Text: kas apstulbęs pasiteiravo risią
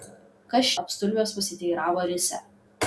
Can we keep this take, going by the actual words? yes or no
yes